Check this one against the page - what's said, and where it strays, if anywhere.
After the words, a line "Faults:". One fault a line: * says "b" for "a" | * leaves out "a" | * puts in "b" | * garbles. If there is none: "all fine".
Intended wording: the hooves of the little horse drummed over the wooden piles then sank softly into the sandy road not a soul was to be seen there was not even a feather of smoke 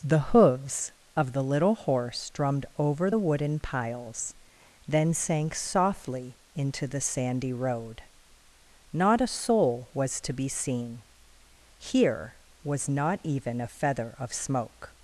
the hooves of the little horse drummed over the wooden piles then sank softly into the sandy road not a soul was to be seen here was not even a feather of smoke
Faults:
* says "here" for "there"